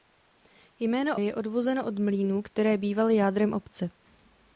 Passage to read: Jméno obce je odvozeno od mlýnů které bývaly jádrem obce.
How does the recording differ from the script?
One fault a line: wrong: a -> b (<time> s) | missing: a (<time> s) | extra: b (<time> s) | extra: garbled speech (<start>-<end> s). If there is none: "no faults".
missing: obce (1.2 s)